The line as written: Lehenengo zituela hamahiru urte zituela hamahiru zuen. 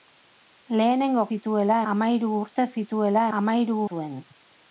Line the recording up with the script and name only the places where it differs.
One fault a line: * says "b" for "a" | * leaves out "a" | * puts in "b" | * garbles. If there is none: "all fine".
all fine